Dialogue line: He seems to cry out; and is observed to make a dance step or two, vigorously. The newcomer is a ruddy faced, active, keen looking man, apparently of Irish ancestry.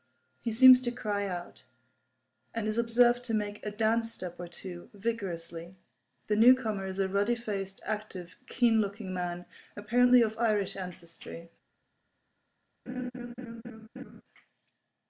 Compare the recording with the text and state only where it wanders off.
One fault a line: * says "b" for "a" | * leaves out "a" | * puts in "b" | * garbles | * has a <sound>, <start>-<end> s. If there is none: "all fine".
* has a laugh, 12.9-14.2 s